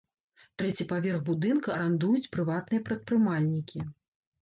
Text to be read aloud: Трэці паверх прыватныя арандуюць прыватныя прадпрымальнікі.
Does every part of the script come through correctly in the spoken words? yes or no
no